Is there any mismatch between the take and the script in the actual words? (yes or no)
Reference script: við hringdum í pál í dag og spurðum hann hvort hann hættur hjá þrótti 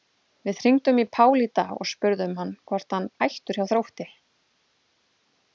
no